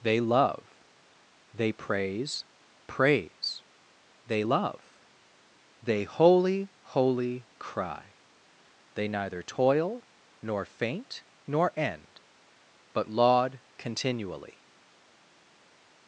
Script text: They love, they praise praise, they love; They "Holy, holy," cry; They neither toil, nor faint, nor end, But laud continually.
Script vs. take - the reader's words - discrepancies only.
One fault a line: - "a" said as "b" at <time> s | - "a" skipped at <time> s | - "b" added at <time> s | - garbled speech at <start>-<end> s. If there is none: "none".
none